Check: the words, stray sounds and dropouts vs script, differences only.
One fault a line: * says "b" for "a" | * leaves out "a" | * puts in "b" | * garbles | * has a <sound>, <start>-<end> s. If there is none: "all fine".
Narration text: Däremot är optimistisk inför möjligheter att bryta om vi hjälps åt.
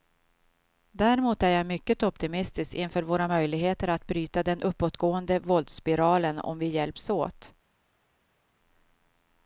* puts in "jag mycket"
* puts in "våra"
* puts in "den uppåtgående våldsspiralen"